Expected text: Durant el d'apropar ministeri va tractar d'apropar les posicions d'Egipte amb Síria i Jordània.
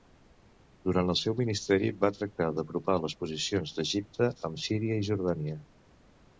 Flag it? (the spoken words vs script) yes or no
yes